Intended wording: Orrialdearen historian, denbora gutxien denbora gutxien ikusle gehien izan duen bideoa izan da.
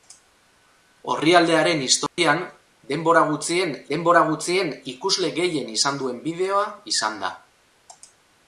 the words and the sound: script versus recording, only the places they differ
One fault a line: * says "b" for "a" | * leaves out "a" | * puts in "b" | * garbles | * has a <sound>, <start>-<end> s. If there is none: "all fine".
* has a dropout, 2.1-2.2 s